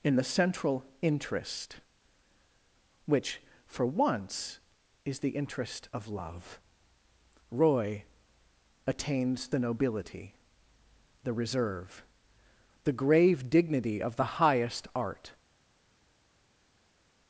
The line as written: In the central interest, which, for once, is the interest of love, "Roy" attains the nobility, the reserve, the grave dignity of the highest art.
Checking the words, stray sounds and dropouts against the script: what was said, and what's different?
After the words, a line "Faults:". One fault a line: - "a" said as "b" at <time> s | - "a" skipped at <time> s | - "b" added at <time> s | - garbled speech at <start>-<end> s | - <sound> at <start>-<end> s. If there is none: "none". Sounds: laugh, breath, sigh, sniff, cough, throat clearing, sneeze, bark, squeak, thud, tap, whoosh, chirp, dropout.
In the central interest, which, for once, is the interest of love, "Roy" attains the nobility, the reserve, the grave dignity of the highest art.
Faults:
none